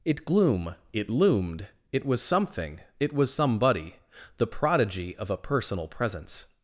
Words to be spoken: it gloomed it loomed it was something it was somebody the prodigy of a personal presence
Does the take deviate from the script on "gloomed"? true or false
true